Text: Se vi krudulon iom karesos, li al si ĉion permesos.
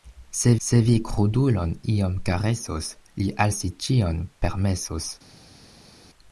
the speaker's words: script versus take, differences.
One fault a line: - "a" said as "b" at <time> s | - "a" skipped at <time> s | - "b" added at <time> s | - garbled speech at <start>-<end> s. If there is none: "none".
- "se" added at 0.6 s